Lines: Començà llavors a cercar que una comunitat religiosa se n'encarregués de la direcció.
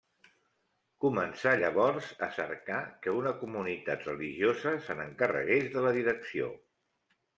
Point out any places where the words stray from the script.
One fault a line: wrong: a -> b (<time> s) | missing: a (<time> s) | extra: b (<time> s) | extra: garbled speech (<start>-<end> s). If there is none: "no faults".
no faults